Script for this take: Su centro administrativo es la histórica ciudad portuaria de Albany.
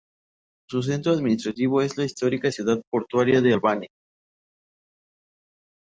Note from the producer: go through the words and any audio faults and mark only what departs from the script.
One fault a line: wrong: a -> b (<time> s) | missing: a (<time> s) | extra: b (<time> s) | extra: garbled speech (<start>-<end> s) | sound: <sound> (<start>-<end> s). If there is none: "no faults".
no faults